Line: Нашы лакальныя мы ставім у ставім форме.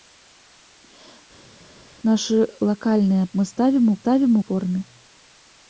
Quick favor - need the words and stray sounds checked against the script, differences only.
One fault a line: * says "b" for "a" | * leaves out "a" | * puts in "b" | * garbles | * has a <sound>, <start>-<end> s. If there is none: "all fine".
all fine